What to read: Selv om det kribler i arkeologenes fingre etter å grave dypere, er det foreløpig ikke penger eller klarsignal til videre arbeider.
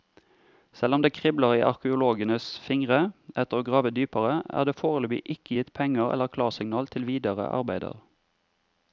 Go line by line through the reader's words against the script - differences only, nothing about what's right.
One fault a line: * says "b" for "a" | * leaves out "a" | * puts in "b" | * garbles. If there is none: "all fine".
* puts in "gitt"